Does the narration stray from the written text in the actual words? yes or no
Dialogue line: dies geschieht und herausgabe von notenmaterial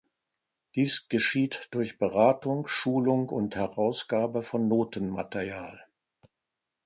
yes